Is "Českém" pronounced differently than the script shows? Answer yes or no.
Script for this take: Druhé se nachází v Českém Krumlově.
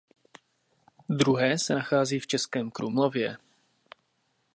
no